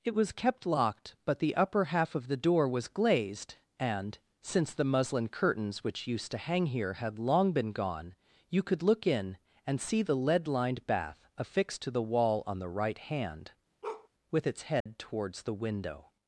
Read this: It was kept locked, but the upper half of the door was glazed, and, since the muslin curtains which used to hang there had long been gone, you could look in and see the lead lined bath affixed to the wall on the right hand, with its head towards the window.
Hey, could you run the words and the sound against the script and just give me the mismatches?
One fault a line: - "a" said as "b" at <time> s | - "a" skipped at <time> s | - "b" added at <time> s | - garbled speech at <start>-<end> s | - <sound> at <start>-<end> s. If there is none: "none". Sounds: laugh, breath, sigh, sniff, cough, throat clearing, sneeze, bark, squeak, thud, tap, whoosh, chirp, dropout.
- "there" said as "here" at 6.7 s
- bark at 13.8-14.1 s
- dropout at 14.8-14.9 s